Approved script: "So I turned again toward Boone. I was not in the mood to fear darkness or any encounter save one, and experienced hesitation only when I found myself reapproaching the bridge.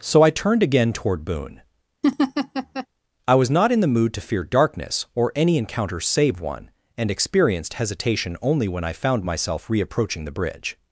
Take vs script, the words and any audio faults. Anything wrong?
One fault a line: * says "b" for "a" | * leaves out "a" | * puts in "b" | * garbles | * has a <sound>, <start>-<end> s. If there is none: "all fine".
* has a laugh, 2.0-2.9 s